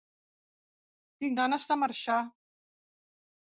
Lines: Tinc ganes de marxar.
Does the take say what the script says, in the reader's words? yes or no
yes